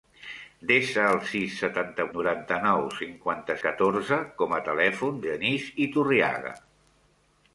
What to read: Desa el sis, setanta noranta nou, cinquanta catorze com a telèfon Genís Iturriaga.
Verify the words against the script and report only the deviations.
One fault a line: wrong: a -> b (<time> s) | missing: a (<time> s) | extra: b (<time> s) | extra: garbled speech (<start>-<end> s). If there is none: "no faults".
no faults